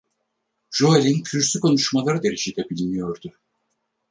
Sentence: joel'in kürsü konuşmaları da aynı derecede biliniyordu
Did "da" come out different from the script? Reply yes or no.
yes